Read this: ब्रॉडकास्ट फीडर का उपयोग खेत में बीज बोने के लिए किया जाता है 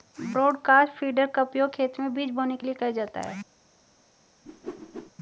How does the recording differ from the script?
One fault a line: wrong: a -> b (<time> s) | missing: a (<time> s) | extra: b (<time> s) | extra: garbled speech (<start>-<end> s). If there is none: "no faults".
no faults